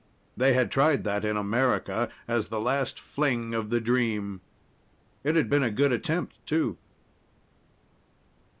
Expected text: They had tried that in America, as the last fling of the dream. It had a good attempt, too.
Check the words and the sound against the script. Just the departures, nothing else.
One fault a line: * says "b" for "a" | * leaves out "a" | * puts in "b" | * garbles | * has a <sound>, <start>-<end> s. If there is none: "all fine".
* puts in "been"